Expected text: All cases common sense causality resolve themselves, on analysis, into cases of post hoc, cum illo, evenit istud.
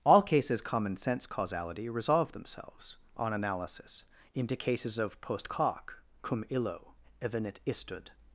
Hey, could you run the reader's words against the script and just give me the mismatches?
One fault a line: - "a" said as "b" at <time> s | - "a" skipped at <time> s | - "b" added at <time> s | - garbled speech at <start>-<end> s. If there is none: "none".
none